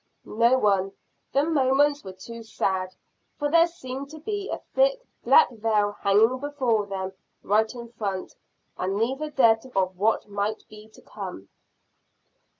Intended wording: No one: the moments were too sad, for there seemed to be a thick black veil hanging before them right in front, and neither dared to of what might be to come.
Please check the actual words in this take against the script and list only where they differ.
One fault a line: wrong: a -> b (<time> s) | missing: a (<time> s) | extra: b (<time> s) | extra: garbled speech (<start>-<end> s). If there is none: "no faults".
no faults